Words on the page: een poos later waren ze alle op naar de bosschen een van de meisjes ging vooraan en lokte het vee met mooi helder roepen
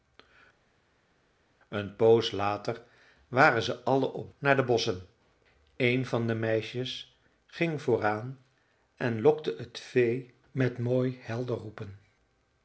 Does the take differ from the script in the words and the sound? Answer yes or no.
no